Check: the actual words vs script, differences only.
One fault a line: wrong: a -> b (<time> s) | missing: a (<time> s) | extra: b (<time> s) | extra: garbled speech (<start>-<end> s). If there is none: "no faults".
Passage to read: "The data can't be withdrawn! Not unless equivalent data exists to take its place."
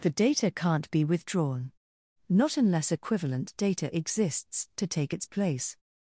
no faults